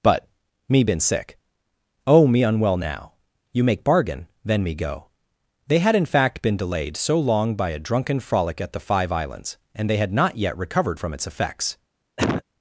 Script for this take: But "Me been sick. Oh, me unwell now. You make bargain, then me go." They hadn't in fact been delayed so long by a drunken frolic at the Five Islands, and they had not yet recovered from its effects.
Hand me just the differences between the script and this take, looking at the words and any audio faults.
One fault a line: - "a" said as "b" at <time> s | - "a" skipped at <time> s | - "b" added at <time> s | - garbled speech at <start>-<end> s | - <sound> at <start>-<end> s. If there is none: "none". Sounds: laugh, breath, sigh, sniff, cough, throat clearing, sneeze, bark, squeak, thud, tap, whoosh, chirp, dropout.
- "hadn't" said as "had" at 5.8 s
- cough at 12.2-12.4 s